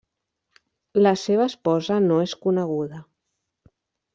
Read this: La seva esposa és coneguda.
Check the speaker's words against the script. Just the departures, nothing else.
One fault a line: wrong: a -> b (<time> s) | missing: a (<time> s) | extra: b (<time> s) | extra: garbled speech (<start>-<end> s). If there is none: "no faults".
extra: no (2.1 s)